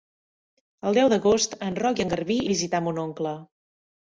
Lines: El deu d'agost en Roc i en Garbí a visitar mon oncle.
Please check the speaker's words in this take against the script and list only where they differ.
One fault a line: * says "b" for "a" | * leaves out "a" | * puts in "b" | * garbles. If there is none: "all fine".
all fine